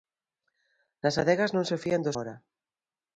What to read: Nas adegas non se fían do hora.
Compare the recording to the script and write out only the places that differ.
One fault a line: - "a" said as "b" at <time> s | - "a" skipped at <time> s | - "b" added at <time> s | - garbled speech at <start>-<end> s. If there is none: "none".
none